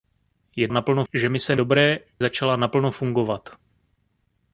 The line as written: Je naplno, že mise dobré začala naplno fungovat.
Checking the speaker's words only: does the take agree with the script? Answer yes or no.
yes